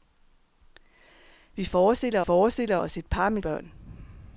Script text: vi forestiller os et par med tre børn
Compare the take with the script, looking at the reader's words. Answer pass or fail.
fail